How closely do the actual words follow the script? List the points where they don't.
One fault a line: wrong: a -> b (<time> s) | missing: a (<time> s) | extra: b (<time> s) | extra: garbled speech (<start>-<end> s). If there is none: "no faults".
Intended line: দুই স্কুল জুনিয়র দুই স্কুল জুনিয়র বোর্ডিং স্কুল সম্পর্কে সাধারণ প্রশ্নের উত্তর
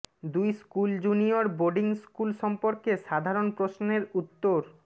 missing: দুই স্কুল জুনিয়র (1.4 s)